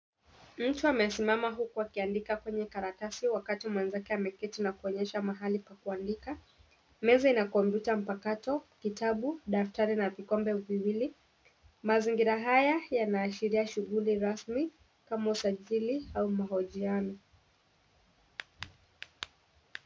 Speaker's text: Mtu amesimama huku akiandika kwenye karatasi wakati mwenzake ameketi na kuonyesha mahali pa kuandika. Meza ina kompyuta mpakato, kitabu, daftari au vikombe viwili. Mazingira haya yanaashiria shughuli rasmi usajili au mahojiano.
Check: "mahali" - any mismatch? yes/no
no